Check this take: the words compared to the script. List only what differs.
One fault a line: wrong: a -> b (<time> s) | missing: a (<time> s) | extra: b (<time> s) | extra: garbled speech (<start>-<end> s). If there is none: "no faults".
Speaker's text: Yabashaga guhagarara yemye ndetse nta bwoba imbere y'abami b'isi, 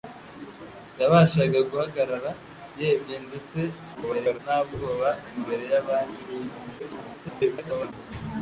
extra: garbled speech (3.9-4.4 s)
extra: garbled speech (6.8-7.9 s)